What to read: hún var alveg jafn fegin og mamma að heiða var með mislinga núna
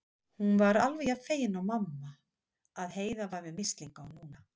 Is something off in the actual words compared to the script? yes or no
no